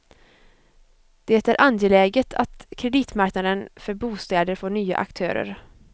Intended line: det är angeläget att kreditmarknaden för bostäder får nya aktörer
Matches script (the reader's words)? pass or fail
pass